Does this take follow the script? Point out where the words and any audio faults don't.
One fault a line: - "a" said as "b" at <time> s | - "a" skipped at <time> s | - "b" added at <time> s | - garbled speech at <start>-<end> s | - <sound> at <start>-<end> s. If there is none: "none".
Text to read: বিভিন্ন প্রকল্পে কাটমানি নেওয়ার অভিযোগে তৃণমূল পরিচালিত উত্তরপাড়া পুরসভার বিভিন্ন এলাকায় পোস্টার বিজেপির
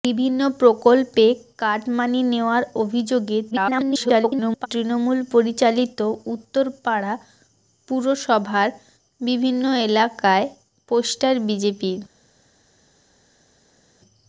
- garbled speech at 3.5-4.7 s